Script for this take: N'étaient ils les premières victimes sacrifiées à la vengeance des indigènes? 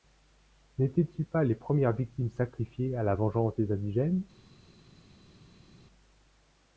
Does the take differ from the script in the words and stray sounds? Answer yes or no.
yes